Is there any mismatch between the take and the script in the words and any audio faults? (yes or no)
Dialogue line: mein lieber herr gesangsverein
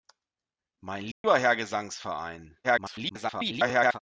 yes